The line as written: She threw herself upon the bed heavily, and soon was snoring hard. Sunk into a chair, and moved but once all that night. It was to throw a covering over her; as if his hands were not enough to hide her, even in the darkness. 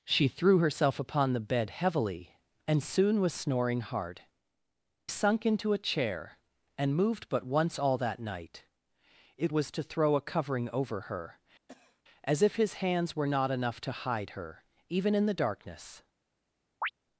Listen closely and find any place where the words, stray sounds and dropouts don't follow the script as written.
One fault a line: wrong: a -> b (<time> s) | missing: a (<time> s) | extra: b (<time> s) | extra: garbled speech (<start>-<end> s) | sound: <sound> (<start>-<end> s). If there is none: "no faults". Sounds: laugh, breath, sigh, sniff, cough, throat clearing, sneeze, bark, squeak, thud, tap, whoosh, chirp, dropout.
sound: cough (11.7-12.0 s)
sound: chirp (16.8-16.9 s)